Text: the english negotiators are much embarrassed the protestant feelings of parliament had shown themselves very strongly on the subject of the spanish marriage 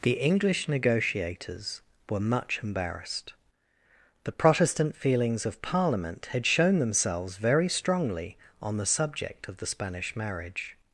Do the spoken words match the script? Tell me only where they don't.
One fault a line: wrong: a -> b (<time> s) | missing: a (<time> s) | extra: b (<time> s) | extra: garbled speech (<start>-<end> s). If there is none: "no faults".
wrong: are -> were (2.1 s)